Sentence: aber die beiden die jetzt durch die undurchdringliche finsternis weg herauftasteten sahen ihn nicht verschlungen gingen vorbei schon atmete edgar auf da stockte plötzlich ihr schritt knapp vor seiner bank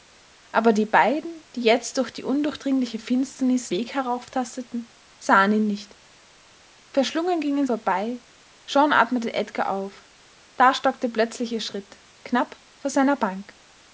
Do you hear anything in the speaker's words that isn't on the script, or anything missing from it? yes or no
no